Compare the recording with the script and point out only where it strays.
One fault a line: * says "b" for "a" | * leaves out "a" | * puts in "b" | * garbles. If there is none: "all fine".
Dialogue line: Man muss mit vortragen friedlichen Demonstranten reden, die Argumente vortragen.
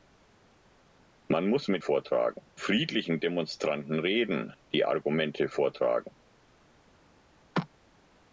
all fine